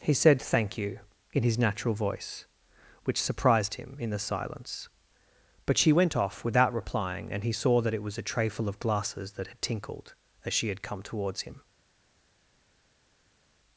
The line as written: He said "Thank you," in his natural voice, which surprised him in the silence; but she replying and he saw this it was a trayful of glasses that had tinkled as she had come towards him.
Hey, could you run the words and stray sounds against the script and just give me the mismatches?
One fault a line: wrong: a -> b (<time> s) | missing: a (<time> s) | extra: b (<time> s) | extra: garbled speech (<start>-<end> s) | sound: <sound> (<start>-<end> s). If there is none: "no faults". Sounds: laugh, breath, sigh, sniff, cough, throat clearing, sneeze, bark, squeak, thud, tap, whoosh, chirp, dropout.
extra: went off without (5.9 s)
wrong: this -> that (7.8 s)